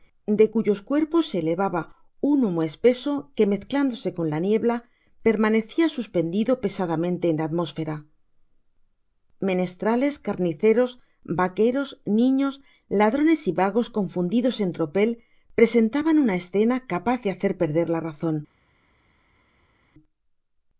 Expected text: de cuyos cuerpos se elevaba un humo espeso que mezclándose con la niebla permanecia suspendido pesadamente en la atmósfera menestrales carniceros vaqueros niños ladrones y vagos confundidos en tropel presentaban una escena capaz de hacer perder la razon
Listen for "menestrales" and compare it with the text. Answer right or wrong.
right